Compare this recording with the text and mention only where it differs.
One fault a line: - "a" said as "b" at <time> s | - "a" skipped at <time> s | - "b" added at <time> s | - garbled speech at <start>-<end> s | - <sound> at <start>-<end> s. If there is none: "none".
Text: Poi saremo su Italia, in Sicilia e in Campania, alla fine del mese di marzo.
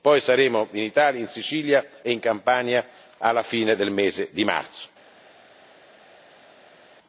- "su" said as "in" at 0.7 s